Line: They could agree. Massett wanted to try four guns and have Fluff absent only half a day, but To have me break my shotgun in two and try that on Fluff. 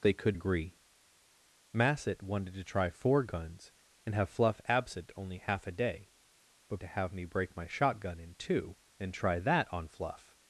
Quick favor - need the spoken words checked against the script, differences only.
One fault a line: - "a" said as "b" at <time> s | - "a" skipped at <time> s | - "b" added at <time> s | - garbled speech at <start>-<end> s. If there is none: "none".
none